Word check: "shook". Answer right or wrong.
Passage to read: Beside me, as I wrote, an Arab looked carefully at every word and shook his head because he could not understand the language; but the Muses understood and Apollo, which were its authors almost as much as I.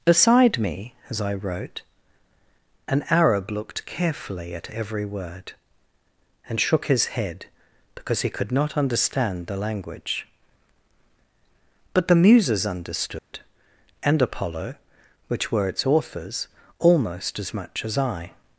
right